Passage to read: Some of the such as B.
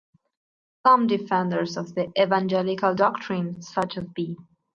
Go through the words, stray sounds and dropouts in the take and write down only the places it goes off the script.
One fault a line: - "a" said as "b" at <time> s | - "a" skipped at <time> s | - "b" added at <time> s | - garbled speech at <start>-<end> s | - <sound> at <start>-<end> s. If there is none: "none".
- "defenders" added at 1.1 s
- "evangelical doctrine" added at 2.2 s